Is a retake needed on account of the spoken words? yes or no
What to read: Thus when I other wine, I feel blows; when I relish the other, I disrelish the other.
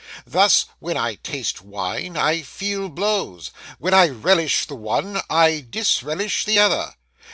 yes